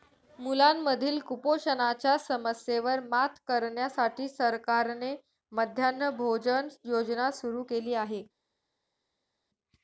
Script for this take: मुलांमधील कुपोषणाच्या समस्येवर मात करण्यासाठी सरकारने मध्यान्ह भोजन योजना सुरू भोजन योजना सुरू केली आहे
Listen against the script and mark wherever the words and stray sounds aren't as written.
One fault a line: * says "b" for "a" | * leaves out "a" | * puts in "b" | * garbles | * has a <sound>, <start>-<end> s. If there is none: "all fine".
* leaves out "भोजन योजना सुरू"